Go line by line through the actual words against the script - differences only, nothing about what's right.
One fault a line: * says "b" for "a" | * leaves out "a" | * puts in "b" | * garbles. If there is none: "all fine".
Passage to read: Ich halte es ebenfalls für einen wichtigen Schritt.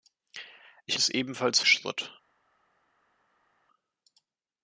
* leaves out "halte"
* leaves out "für einen wichtigen"